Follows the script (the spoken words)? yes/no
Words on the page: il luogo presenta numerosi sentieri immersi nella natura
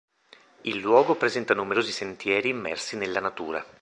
yes